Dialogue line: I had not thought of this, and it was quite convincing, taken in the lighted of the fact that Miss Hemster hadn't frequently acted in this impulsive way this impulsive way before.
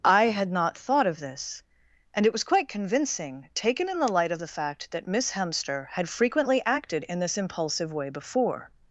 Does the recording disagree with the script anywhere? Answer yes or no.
yes